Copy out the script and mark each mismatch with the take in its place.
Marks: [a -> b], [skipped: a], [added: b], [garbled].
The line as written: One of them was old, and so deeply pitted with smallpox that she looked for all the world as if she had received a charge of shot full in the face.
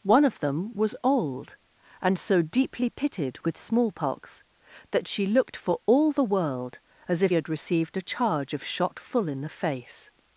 One of them was old, and so deeply pitted with smallpox that she looked for all the world as if [skipped: she] had received a charge of shot full in the face.